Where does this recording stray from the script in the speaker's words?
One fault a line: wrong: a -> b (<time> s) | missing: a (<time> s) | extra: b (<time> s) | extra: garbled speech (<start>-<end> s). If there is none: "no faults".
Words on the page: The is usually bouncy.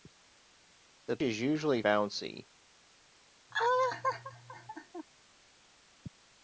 no faults